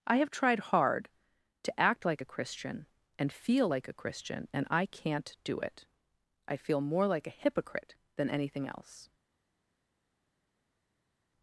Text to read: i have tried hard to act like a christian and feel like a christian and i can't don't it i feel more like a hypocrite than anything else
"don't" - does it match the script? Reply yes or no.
no